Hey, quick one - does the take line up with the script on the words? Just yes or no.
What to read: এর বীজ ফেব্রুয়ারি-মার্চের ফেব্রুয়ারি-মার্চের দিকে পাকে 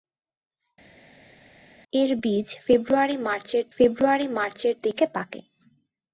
yes